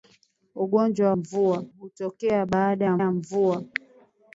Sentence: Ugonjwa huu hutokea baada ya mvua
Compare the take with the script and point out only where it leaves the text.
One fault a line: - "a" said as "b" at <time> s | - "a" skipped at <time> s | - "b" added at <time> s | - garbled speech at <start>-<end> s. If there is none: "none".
- "huu" said as "mvua" at 1.1 s
- "ya" added at 3.0 s